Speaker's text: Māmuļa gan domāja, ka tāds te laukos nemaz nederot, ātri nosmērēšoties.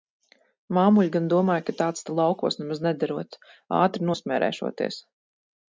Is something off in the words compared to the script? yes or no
no